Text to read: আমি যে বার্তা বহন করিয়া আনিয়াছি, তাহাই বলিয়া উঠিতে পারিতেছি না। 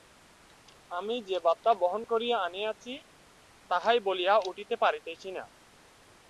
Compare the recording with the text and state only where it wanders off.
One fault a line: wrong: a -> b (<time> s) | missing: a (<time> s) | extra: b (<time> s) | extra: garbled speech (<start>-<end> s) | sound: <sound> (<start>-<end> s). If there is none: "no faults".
no faults